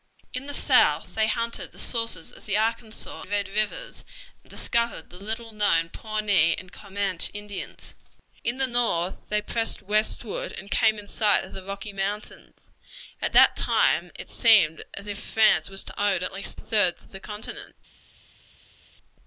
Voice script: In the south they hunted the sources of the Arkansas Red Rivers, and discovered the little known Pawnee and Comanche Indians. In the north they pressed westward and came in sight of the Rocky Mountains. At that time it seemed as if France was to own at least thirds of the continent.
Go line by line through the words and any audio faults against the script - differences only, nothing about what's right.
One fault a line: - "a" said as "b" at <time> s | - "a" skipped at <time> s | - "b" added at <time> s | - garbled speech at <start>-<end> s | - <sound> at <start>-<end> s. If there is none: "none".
none